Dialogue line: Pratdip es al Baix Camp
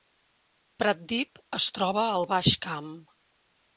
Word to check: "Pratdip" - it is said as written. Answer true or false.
true